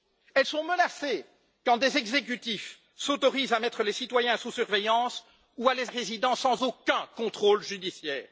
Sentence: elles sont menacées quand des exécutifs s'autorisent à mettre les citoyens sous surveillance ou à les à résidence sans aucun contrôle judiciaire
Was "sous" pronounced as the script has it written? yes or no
yes